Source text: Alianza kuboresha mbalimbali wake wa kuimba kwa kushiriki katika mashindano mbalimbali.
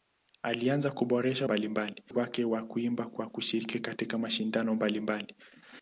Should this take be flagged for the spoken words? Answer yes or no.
no